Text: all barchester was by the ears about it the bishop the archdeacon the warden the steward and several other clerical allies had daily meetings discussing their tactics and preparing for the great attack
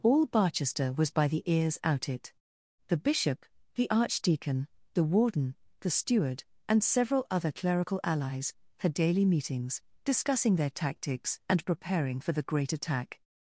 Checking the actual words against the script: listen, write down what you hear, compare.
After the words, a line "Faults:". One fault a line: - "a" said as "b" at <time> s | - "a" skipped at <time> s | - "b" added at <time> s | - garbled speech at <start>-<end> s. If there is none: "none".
all barchester was by the ears out it the bishop the archdeacon the warden the steward and several other clerical allies had daily meetings discussing their tactics and preparing for the great attack
Faults:
- "about" said as "out" at 1.8 s